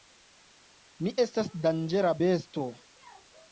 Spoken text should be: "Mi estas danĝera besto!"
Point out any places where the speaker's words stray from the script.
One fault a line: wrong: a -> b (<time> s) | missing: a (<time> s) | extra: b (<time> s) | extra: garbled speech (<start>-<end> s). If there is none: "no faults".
no faults